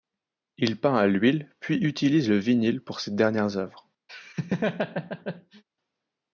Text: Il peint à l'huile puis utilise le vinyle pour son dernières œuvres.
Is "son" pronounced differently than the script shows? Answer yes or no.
yes